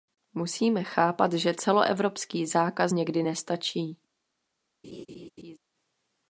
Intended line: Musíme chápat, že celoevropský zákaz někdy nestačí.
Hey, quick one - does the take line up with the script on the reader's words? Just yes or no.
yes